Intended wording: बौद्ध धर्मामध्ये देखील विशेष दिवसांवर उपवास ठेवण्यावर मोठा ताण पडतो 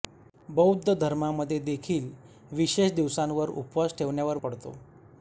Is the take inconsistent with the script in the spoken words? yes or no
yes